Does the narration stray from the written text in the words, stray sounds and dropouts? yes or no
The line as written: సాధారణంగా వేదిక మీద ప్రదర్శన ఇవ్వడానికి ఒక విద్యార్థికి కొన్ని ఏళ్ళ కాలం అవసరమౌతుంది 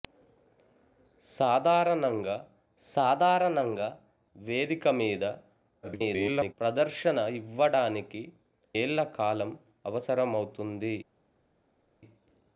yes